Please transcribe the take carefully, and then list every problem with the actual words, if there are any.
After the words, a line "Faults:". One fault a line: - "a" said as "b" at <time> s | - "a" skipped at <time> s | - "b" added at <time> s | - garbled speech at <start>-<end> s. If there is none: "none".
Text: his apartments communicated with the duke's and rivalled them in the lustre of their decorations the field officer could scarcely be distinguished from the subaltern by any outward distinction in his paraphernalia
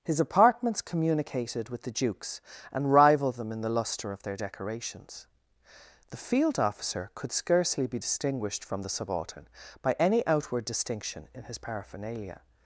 his apartments communicated with the duke's and rivalled them in the lustre of their decorations the field officer could scarcely be distinguished from the subaltern by any outward distinction in his paraphernalia
Faults:
none